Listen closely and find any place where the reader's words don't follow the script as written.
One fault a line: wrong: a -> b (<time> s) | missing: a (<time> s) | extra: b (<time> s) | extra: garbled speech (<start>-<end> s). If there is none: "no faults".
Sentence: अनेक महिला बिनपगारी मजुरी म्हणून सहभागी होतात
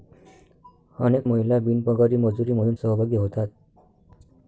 no faults